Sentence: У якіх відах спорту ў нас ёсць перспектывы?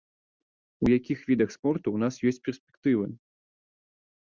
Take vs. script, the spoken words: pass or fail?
pass